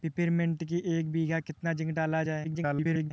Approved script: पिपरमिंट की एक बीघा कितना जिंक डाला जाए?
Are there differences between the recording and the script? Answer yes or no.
yes